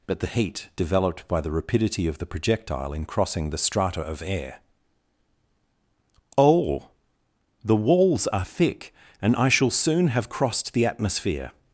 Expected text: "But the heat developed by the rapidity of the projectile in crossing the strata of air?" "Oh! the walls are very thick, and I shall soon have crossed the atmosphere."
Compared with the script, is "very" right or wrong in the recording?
wrong